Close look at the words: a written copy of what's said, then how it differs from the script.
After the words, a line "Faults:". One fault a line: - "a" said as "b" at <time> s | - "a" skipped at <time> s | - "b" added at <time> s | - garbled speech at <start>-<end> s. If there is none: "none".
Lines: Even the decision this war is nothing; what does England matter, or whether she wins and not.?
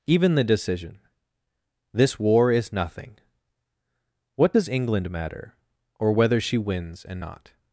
Even the decision this war is nothing; what does England matter, or whether she wins and not.?
Faults:
none